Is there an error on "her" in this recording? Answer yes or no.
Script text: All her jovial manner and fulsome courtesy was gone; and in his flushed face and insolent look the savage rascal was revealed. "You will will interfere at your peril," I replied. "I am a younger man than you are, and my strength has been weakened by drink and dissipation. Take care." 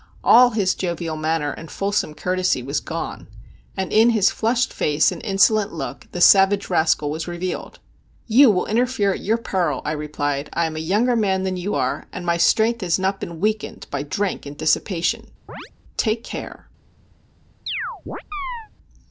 yes